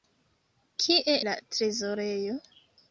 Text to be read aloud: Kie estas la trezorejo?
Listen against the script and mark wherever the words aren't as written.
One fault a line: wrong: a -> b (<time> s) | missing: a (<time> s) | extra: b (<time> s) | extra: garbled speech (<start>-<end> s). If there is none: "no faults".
missing: estas (1.1 s)